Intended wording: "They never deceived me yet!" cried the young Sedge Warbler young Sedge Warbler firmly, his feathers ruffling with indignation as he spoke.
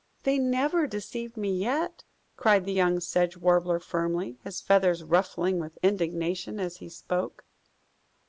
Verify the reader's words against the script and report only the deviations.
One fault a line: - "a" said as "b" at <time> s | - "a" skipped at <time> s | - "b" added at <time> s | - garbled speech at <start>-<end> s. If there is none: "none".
- "young Sedge Warbler" skipped at 3.8 s